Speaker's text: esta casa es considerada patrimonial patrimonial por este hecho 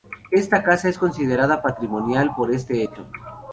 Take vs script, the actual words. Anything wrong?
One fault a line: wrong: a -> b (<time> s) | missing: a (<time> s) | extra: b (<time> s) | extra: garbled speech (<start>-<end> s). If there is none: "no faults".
missing: patrimonial (2.4 s)